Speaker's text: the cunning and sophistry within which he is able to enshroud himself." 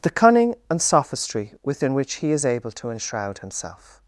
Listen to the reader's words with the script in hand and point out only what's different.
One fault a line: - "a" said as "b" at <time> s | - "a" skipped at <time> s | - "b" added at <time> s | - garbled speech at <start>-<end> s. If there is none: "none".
none